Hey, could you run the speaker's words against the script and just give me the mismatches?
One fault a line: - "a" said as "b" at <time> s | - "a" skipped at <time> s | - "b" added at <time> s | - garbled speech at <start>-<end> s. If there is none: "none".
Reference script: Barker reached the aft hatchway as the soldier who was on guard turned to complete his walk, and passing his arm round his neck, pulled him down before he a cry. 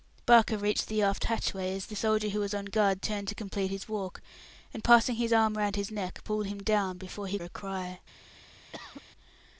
none